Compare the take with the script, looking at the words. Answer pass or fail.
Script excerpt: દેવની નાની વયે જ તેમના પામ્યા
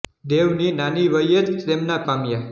pass